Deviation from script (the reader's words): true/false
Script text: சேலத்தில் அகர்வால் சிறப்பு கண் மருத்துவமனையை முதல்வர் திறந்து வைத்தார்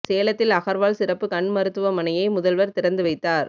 false